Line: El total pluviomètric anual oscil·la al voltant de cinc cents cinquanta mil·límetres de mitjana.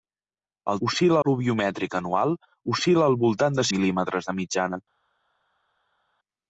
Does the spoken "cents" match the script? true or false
false